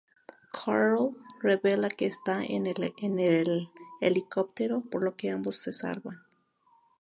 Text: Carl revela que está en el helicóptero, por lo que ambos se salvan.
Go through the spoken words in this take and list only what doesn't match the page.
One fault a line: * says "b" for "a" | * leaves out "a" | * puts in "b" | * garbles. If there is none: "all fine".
all fine